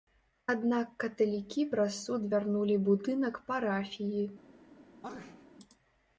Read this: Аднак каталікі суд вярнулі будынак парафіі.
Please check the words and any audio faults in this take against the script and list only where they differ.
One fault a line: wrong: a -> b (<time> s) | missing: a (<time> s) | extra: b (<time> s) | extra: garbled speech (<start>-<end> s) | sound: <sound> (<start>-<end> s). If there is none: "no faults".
extra: праз (1.7 s)
sound: sneeze (5.0-5.5 s)